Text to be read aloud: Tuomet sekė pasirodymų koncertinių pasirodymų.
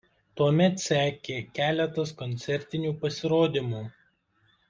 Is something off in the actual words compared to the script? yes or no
yes